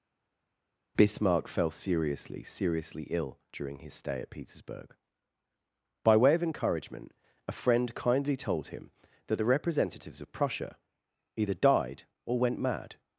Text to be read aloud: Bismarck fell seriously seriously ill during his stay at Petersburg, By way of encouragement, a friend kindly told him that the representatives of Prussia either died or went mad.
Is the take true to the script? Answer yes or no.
yes